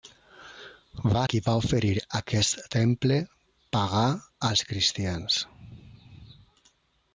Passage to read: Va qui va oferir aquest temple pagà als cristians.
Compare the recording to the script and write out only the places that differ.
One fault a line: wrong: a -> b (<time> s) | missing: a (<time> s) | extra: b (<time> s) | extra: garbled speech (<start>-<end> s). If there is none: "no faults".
no faults